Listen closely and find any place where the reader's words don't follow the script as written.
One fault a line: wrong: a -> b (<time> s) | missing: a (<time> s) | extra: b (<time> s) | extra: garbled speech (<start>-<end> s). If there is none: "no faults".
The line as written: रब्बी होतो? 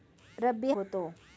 no faults